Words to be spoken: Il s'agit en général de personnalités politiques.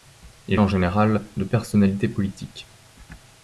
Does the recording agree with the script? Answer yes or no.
no